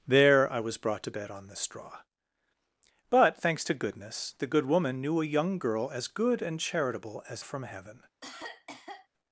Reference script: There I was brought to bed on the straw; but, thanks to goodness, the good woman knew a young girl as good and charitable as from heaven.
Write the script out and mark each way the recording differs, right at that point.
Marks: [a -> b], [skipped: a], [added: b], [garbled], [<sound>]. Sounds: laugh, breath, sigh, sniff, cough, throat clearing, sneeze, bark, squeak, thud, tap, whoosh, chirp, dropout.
There I was brought to bed on the straw; but, thanks to goodness, the good woman knew a young girl as good and charitable as from heaven. [cough]